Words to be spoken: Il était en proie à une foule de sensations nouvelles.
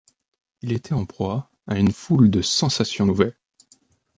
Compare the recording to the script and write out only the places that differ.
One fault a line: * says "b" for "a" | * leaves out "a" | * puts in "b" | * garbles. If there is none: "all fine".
all fine